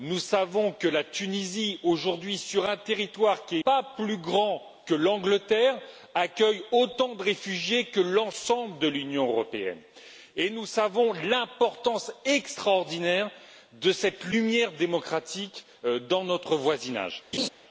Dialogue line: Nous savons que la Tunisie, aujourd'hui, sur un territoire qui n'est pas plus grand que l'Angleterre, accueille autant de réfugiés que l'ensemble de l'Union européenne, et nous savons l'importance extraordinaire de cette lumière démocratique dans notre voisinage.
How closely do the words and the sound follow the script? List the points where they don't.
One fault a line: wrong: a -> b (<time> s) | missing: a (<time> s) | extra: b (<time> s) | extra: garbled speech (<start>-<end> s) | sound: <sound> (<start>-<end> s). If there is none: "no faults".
missing: n'est (3.6 s)
sound: laugh (17.3-17.5 s)